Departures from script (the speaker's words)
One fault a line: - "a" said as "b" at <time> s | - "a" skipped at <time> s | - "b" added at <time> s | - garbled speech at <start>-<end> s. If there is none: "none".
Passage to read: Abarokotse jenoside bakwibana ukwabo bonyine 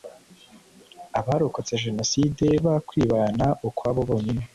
none